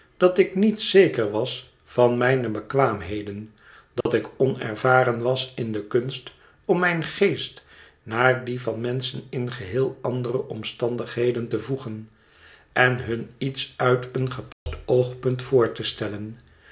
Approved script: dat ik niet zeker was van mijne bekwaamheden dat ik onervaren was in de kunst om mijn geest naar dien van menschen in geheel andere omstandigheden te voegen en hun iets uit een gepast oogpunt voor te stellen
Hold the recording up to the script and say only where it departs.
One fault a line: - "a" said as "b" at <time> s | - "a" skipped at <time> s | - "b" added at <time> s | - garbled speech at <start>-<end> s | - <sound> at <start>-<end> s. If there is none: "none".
- dropout at 4.0-4.1 s
- dropout at 14.5-14.7 s